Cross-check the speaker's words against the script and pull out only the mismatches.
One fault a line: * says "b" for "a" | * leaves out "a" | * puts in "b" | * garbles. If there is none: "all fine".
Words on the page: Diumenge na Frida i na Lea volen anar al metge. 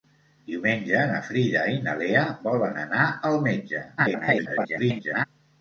* garbles